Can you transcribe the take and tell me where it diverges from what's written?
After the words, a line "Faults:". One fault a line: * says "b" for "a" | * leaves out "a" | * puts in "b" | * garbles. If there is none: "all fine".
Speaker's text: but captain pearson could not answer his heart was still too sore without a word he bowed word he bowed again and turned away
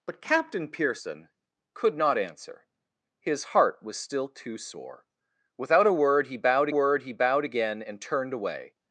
but captain pearson could not answer his heart was still too sore without a word he bowed word he bowed again and turned away
Faults:
all fine